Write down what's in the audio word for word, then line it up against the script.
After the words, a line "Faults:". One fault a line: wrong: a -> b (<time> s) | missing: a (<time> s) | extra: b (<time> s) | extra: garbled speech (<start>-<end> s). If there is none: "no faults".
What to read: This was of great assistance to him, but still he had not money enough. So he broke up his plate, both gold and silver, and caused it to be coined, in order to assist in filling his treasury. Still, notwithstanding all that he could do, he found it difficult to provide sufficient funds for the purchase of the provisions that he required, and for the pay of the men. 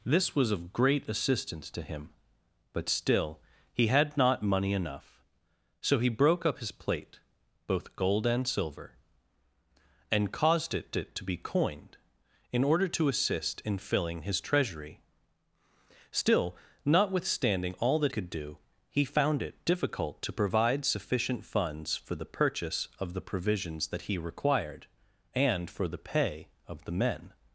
This was of great assistance to him, but still he had not money enough. So he broke up his plate, both gold and silver, and caused it it to be coined, in order to assist in filling his treasury. Still, notwithstanding all that could do, he found it difficult to provide sufficient funds for the purchase of the provisions that he required, and for the pay of the men.
Faults:
extra: it (11.0 s)
missing: he (18.1 s)